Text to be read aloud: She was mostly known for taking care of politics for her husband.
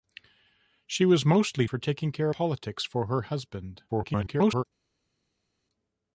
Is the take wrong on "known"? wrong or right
wrong